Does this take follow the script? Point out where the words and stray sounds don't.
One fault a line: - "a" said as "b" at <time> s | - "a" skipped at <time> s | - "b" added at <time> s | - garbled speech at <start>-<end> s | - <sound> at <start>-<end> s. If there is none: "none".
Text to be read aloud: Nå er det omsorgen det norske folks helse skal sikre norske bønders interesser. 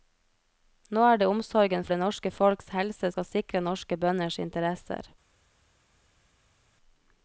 none